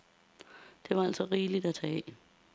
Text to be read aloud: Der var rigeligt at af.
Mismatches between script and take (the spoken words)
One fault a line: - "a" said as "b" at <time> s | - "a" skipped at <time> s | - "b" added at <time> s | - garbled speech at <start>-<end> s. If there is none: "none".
- "altså" added at 1.0 s
- "tage" added at 1.7 s